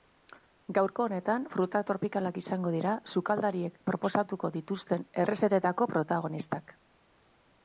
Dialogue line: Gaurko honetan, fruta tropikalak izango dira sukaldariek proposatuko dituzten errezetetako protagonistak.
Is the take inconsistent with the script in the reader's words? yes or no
no